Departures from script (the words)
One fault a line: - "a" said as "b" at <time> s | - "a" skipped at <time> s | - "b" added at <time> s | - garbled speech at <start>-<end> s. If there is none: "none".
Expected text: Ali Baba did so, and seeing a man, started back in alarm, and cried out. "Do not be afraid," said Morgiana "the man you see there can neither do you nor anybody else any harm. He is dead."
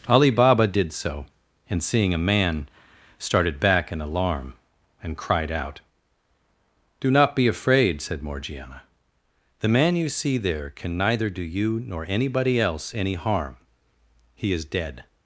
none